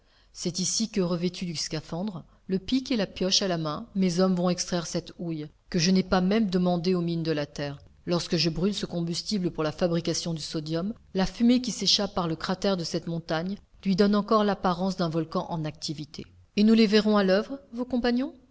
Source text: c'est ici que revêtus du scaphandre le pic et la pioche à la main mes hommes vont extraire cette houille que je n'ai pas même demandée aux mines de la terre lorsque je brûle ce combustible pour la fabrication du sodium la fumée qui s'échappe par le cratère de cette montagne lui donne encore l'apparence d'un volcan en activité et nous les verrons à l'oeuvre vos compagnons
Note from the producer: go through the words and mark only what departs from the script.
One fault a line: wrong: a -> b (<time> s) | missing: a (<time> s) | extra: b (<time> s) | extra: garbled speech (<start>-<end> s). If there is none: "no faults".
no faults